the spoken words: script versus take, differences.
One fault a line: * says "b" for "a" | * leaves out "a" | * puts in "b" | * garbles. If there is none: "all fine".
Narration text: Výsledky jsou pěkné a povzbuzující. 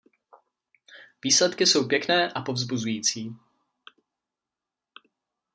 all fine